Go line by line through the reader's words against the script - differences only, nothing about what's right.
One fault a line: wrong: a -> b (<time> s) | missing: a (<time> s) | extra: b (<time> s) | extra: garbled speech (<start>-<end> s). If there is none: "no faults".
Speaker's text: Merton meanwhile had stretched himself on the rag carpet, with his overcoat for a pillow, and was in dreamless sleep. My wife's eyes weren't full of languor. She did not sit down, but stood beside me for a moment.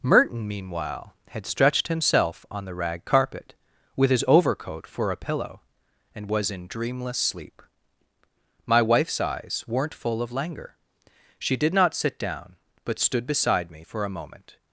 no faults